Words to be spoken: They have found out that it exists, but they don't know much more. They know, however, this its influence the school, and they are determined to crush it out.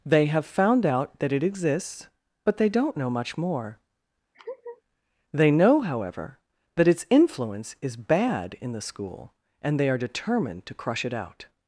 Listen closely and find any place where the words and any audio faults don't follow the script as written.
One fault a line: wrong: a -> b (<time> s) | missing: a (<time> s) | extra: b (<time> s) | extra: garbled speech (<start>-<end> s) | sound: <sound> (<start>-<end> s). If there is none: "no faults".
sound: laugh (4.3-4.8 s)
wrong: this -> that (6.8 s)
extra: is bad in (7.8 s)